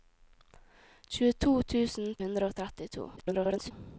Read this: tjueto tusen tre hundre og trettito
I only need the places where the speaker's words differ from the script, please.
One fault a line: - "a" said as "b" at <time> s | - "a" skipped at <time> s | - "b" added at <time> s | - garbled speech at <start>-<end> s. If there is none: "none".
- "tre" skipped at 2.1 s
- garbled speech at 3.2-3.7 s